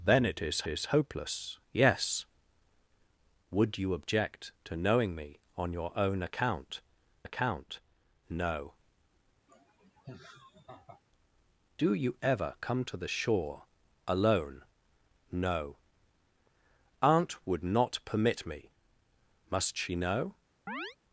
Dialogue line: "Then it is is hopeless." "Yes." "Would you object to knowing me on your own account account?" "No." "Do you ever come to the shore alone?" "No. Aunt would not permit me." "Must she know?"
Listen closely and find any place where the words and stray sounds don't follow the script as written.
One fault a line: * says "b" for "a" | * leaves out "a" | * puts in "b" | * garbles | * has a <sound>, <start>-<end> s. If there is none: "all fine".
* has a laugh, 9.5-11.0 s
* has a chirp, 20.7-21.0 s